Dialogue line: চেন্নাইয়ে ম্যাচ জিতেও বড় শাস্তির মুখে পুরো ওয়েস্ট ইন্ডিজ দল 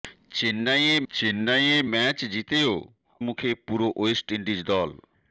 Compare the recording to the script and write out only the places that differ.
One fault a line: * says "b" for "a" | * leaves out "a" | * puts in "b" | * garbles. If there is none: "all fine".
* puts in "চেন্নাইয়ে"
* leaves out "বড় শাস্তির"